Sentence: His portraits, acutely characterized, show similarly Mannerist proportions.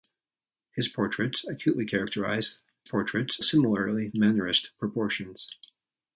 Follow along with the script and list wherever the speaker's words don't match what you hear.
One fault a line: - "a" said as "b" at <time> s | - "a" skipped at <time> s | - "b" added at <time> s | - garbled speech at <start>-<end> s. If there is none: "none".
- "show" said as "portraits" at 2.8 s